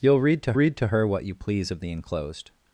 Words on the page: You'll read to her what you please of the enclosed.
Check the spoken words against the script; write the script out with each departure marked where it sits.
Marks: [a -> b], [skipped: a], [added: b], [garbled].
You'll read to [added: read to] her what you please of the enclosed.